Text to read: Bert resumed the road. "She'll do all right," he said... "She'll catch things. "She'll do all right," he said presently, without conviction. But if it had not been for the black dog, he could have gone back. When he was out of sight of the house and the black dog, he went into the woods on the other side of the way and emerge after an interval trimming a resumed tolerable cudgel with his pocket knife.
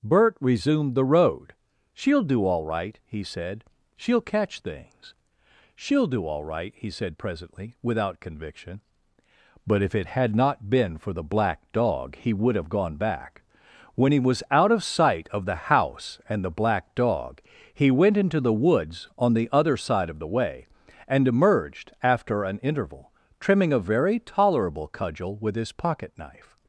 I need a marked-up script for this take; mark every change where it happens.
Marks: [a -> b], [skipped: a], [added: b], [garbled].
Bert resumed the road. "She'll do all right," he said... "She'll catch things. "She'll do all right," he said presently, without conviction. But if it had not been for the black dog, he [could -> would] have gone back. When he was out of sight of the house and the black dog, he went into the woods on the other side of the way and [emerge -> emerged] after an interval trimming a [resumed -> very] tolerable cudgel with his pocket knife.